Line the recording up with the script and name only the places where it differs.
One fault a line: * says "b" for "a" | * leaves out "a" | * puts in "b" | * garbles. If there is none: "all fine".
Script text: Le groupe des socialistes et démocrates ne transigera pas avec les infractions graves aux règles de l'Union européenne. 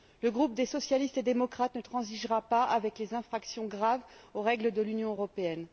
all fine